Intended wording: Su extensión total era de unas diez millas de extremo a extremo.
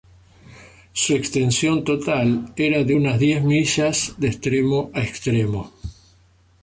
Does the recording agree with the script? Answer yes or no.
yes